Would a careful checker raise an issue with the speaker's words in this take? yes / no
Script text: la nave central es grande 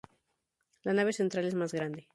yes